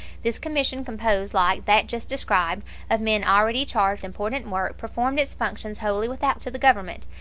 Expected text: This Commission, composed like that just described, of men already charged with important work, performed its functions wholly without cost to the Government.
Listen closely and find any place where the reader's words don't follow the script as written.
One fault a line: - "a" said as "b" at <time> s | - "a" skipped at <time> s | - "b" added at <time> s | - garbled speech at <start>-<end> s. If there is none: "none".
- "with" skipped at 4.0 s
- "cost" skipped at 6.4 s